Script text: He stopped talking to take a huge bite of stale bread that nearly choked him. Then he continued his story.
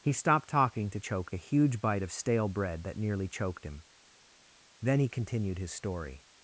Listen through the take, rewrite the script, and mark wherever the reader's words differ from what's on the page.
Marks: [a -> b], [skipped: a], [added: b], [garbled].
He stopped talking to [take -> choked] a huge bite of stale bread that nearly choked him. Then he continued his story.